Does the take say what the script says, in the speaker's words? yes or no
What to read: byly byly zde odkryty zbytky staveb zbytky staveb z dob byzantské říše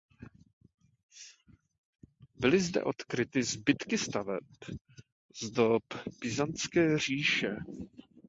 no